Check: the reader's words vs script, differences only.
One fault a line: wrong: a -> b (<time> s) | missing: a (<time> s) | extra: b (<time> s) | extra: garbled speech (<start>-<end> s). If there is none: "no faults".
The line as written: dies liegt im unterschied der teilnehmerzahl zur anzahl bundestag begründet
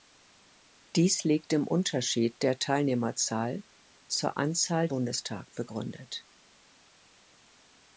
no faults